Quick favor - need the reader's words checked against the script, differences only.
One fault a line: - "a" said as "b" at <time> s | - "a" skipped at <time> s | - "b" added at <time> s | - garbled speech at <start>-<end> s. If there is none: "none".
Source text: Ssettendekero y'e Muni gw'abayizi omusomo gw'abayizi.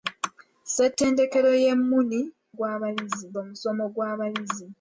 none